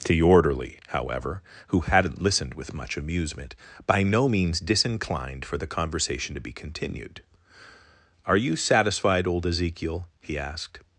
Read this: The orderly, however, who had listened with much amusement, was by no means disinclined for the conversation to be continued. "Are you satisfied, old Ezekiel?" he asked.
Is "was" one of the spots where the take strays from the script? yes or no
yes